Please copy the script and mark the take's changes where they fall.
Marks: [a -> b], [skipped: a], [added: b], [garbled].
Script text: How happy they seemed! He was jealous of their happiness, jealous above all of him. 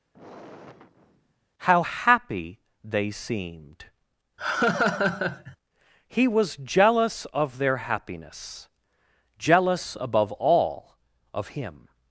How happy they seemed! He was jealous of their happiness, jealous above all of him.